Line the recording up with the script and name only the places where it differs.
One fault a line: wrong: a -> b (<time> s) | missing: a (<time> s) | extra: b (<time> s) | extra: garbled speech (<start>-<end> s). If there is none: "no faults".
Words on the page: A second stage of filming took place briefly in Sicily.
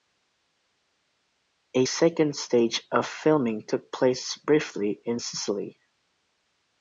no faults